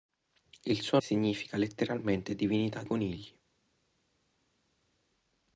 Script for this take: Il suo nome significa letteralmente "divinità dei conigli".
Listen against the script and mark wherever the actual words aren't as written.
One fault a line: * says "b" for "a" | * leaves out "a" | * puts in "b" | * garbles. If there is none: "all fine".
* leaves out "nome"
* leaves out "dei"